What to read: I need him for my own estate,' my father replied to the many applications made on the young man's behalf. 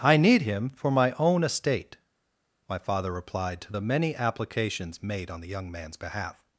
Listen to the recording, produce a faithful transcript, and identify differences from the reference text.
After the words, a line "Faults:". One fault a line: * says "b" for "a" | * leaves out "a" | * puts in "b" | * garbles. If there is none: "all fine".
I need him for my own estate,' my father replied to the many applications made on the young man's behalf.
Faults:
all fine